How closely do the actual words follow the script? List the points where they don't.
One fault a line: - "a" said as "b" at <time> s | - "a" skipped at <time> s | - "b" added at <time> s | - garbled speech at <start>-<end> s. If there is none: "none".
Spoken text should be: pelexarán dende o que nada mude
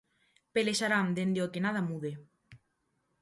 none